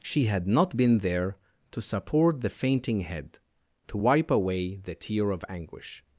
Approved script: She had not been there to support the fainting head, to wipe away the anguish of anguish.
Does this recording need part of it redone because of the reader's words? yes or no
yes